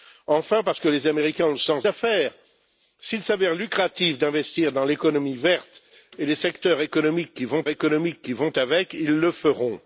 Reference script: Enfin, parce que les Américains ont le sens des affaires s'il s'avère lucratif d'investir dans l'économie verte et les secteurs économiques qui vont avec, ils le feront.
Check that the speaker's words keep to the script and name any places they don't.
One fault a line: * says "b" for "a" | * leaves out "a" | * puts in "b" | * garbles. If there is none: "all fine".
* leaves out "des"
* puts in "économiques qui vont"